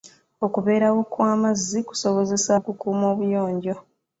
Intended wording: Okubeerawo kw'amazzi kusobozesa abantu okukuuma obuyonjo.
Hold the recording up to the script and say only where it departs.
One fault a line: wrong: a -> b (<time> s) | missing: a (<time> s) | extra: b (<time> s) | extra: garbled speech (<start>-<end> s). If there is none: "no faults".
missing: abantu (2.5 s)